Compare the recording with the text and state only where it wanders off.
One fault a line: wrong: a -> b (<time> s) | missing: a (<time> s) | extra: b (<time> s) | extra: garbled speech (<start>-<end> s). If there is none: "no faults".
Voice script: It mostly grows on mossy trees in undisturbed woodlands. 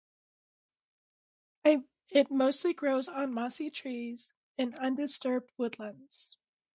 no faults